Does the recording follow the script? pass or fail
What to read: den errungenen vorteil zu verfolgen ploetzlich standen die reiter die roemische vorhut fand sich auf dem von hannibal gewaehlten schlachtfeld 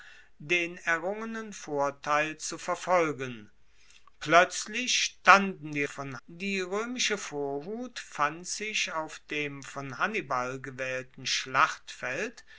fail